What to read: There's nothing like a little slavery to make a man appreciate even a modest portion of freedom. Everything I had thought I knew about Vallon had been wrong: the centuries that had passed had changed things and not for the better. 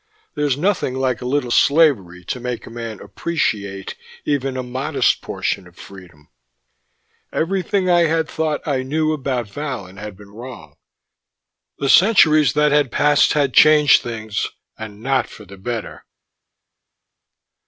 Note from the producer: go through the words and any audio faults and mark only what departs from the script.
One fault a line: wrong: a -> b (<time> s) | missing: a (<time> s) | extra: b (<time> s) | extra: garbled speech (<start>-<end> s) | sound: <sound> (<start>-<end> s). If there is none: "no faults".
no faults